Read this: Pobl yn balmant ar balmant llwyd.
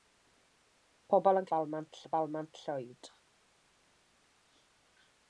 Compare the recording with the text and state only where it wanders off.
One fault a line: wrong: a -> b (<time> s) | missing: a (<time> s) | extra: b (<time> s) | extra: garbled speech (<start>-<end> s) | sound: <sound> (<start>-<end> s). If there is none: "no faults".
no faults